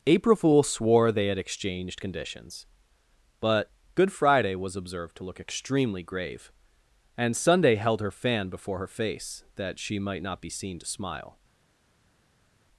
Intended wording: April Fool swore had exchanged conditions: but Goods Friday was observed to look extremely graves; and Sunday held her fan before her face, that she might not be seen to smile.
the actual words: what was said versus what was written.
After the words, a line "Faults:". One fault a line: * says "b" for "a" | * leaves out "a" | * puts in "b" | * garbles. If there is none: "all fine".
April Fool swore they had exchanged conditions: but Good Friday was observed to look extremely grave; and Sunday held her fan before her face, that she might not be seen to smile.
Faults:
* puts in "they"
* says "Good" for "Goods"
* says "grave" for "graves"